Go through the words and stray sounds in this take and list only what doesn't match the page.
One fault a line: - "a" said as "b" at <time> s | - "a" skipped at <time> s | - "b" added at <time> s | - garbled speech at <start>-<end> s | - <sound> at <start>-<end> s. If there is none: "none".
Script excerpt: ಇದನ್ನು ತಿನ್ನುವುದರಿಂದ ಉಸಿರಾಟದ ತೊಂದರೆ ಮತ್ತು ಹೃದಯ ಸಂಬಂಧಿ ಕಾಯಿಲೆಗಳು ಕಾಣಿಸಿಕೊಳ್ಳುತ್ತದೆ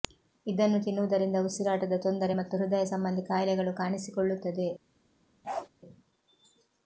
- bark at 5.4-5.7 s